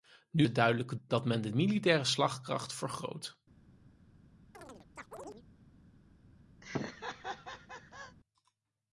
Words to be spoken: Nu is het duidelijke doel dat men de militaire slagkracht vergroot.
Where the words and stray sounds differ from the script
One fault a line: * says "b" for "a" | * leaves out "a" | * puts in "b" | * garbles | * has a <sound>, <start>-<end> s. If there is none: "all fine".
* leaves out "is"
* leaves out "doel"
* has a chirp, 4.5-5.4 s
* has a laugh, 6.6-8.2 s